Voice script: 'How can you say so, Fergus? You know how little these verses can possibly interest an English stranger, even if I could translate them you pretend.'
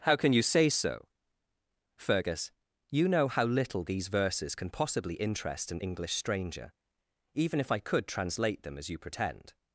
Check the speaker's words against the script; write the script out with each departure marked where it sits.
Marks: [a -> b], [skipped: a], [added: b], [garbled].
'How can you say so, Fergus? You know how little these verses can possibly interest an English stranger, even if I could translate them [added: as] you pretend.'